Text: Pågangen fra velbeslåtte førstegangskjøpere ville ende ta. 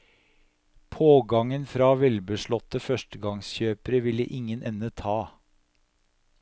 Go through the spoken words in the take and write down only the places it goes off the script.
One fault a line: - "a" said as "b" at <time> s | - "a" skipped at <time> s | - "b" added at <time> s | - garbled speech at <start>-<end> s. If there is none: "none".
- "ingen" added at 4.4 s